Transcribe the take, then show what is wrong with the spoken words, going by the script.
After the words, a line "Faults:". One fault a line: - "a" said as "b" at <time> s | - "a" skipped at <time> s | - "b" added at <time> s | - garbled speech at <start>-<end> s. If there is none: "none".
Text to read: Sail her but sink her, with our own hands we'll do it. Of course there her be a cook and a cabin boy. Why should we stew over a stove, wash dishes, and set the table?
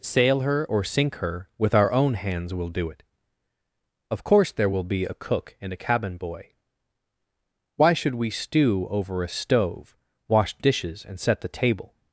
Sail her or sink her, with our own hands we'll do it. Of course there will be a cook and a cabin boy. Why should we stew over a stove, wash dishes, and set the table?
Faults:
- "but" said as "or" at 0.7 s
- "her" said as "will" at 4.7 s